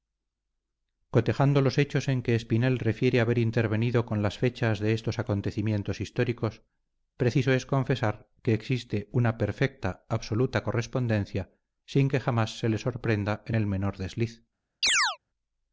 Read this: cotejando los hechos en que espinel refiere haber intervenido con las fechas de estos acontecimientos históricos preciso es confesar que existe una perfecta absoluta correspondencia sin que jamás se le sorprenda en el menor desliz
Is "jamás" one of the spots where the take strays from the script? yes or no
no